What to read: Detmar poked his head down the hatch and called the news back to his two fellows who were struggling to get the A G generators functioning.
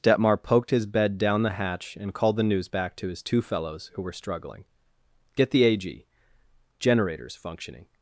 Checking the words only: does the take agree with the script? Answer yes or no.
no